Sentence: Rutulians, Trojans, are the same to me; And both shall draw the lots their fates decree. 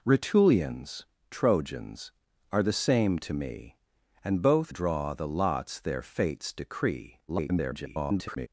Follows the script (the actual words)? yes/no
no